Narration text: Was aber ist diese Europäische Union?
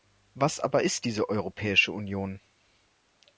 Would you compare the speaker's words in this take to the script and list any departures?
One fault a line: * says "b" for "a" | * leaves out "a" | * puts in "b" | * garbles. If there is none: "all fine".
all fine